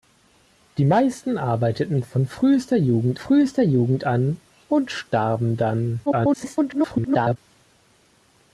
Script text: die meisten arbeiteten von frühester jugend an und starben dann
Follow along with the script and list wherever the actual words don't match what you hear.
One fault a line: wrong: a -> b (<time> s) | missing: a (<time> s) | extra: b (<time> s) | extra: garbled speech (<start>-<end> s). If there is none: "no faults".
extra: frühester jugend (3.1 s)
extra: garbled speech (6.1-7.4 s)